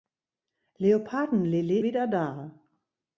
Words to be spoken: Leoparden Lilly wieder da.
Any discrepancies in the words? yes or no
no